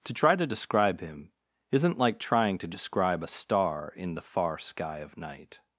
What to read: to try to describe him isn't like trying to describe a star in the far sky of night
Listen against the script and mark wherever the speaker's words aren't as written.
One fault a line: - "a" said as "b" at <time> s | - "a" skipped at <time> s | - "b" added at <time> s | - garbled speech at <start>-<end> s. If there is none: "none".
none